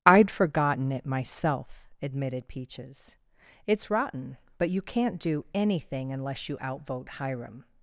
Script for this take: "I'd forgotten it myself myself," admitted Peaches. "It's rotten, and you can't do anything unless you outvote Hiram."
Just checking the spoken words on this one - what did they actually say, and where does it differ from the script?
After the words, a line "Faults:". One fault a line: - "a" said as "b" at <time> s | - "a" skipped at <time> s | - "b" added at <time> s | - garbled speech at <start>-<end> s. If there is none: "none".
"I'd forgotten it myself," admitted Peaches. "It's rotten, but you can't do anything unless you outvote Hiram."
Faults:
- "myself" skipped at 1.9 s
- "and" said as "but" at 4.6 s